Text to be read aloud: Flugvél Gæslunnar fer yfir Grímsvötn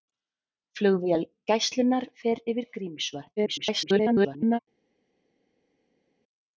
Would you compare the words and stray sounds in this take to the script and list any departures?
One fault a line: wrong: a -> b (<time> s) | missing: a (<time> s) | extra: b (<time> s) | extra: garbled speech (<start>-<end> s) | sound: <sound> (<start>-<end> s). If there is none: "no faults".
extra: garbled speech (3.4-4.6 s)